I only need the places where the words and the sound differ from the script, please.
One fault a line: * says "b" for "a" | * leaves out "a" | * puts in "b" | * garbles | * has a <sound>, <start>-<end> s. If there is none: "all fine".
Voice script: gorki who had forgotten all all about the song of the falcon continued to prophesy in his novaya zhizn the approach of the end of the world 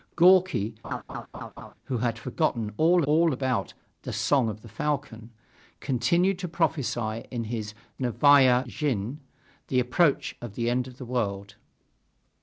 * has a laugh, 0.8-1.7 s